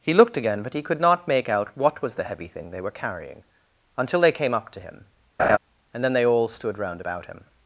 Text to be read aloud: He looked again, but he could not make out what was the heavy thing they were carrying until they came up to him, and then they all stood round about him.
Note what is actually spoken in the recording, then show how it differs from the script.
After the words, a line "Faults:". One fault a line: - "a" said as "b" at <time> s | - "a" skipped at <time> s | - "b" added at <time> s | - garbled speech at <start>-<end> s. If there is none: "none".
He looked again, but he could not make out what was the heavy thing they were carrying until they came up to him, and then they all stood round about him.
Faults:
none